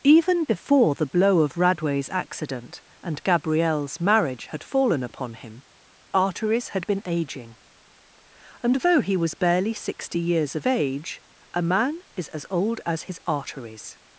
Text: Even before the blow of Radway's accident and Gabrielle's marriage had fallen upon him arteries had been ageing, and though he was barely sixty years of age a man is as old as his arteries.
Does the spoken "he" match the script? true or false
true